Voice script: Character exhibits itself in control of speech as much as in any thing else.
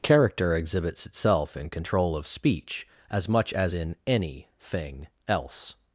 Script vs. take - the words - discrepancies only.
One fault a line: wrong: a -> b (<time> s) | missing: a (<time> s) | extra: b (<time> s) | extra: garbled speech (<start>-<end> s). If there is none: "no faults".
no faults